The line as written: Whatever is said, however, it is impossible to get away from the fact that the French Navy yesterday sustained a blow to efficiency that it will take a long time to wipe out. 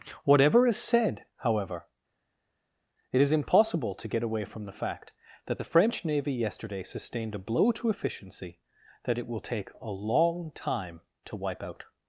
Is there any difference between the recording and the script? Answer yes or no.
no